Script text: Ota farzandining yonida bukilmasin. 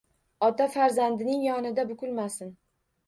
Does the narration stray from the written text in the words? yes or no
no